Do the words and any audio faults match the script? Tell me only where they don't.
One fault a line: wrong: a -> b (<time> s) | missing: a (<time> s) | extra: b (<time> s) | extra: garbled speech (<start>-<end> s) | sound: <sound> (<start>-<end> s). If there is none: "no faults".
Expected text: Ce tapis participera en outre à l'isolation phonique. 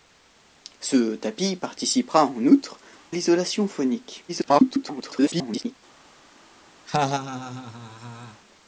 missing: à (2.8 s)
extra: garbled speech (4.3-5.8 s)
sound: laugh (6.9-8.4 s)